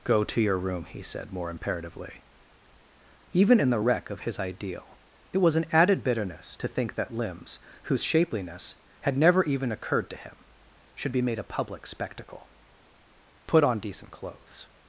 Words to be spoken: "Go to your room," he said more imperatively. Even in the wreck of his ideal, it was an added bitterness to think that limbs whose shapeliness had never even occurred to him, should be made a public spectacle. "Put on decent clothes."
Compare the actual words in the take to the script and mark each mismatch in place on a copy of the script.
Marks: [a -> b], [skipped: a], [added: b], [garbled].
"Go to your room," he said more imperatively. Even in the wreck of his ideal, it was an added bitterness to think that limbs whose shapeliness had never even occurred to him, should be made a public spectacle. "Put on decent clothes."